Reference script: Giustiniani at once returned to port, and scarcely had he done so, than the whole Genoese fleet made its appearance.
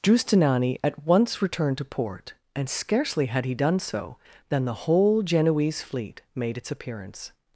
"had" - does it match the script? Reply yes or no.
yes